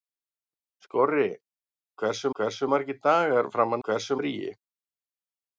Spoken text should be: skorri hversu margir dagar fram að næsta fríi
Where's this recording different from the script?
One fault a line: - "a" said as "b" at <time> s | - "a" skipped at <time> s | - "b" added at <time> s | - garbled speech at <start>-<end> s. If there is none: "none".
- "hversu" added at 2.4 s
- "næsta" said as "hversu" at 3.9 s